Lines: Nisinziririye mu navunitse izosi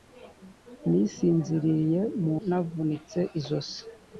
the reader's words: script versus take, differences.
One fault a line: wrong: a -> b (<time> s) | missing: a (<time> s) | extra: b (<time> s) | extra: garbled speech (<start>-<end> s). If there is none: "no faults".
no faults